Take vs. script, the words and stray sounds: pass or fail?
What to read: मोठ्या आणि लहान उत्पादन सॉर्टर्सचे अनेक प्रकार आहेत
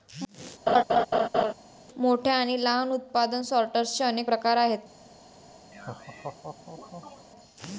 fail